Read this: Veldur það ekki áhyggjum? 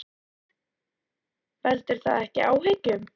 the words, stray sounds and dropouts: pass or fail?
pass